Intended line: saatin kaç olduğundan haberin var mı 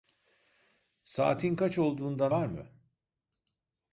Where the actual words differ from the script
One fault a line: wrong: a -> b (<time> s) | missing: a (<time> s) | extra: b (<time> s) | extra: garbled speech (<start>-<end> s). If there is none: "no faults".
missing: haberin (2.3 s)